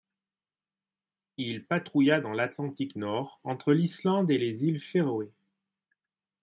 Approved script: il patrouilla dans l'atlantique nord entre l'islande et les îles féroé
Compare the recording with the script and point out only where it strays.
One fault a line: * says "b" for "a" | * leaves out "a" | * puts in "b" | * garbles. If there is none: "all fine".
all fine